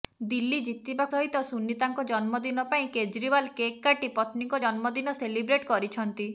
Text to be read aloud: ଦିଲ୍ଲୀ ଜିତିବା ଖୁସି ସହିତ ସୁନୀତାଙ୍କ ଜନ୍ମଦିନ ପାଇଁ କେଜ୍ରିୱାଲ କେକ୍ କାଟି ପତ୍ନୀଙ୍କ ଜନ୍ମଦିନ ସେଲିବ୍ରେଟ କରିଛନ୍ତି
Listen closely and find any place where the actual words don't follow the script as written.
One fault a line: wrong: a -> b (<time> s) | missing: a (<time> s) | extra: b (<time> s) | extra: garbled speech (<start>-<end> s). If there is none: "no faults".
missing: ଖୁସି (1.1 s)